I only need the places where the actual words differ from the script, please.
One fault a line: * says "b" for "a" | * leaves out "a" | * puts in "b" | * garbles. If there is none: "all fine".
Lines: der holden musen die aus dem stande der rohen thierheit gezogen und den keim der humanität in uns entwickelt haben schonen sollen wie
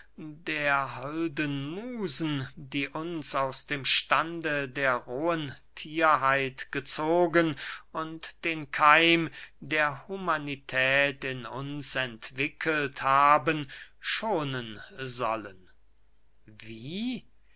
* puts in "uns"